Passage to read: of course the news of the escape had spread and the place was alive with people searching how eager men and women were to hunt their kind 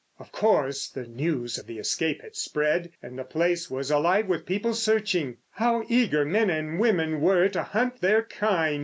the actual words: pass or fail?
pass